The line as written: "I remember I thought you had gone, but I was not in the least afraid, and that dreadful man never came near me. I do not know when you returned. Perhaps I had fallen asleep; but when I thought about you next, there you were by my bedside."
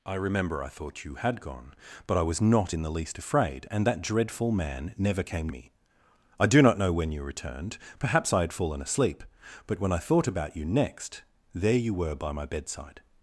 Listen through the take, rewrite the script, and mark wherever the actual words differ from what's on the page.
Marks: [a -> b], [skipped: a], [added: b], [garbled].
"I remember I thought you had gone, but I was not in the least afraid, and that dreadful man never came [skipped: near] me. I do not know when you returned. Perhaps I had fallen asleep; but when I thought about you next, there you were by my bedside."